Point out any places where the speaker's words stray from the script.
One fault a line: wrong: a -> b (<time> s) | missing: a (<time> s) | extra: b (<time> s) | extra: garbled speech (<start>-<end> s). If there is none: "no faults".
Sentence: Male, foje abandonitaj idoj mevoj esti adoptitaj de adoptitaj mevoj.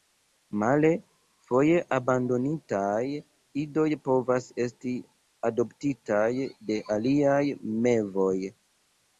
wrong: mevoj -> povas (4.1 s)
wrong: adoptitaj -> aliaj (7.0 s)